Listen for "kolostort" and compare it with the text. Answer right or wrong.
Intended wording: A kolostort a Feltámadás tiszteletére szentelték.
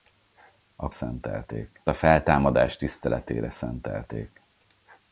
wrong